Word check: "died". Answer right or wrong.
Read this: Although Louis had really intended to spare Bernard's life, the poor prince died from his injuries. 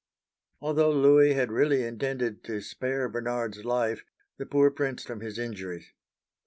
wrong